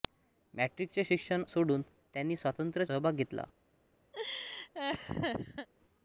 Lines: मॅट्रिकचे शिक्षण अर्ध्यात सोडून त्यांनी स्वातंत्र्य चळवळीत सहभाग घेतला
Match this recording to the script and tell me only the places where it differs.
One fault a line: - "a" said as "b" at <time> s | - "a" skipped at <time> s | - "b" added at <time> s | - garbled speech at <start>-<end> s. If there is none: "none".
- "अर्ध्यात" skipped at 1.4 s
- "चळवळीत" skipped at 2.9 s